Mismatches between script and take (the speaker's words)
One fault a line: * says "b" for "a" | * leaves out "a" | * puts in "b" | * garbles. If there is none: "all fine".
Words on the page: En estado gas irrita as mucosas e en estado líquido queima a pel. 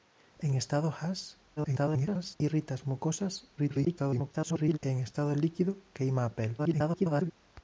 * garbles
* garbles
* garbles